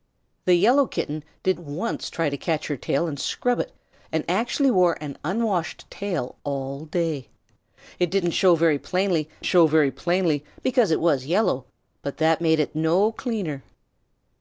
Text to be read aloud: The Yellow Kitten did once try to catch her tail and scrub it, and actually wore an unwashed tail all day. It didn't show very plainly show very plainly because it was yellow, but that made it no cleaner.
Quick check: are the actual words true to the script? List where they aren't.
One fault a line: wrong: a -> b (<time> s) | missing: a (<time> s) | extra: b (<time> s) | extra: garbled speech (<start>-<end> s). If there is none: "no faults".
no faults